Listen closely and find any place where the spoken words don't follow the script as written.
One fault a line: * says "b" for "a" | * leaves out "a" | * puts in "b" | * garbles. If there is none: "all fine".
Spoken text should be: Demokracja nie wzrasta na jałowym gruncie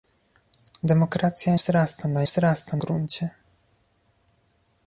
* leaves out "nie"
* says "wzrasta" for "jałowym"